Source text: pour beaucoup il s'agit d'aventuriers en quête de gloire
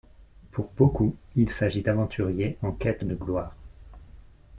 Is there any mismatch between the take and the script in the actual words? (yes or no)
no